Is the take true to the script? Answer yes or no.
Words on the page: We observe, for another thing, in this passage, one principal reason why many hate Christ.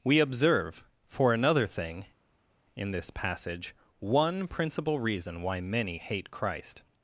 yes